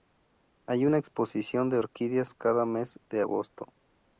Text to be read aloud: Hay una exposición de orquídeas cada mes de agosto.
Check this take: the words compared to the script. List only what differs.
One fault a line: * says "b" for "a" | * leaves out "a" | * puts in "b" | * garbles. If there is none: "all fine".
all fine